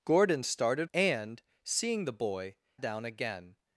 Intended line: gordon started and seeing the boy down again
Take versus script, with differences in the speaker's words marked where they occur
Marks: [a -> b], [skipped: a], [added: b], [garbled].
gordon started and seeing the boy down again